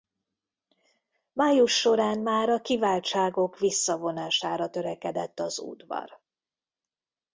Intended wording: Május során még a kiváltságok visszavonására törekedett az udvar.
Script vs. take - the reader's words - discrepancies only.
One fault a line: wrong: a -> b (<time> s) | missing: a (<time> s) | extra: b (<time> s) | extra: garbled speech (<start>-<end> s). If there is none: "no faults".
wrong: még -> már (2.2 s)